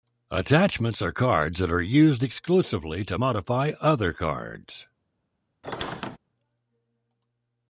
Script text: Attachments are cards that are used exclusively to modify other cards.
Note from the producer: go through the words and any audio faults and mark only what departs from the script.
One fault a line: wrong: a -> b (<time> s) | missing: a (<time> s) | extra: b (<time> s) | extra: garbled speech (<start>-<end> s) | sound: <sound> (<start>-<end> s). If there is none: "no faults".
sound: squeak (5.6-6.2 s)